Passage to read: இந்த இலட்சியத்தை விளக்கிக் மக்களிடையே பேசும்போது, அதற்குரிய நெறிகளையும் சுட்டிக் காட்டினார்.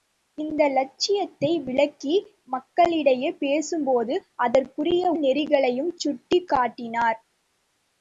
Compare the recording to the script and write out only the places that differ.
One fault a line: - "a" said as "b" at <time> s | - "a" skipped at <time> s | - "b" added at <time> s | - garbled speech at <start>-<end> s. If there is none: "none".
none